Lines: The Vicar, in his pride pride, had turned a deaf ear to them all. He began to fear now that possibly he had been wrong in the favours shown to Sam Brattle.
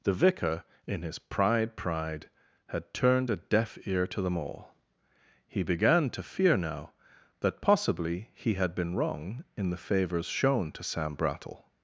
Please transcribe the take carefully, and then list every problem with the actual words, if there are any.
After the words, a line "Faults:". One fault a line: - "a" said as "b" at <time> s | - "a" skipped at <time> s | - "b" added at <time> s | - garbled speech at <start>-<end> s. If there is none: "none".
The Vicar, in his pride pride, had turned a deaf ear to them all. He began to fear now that possibly he had been wrong in the favours shown to Sam Brattle.
Faults:
none